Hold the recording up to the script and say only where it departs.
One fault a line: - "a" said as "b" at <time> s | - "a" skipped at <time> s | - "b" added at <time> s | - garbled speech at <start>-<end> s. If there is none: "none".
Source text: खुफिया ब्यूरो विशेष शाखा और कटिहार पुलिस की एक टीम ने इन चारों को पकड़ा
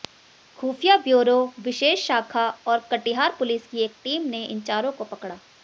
none